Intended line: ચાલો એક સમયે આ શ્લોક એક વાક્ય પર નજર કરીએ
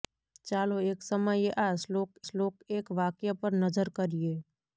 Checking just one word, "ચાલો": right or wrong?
right